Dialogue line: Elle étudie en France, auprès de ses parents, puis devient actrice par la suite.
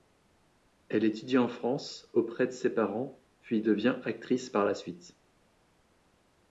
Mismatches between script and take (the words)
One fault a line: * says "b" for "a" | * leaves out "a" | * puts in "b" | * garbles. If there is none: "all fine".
all fine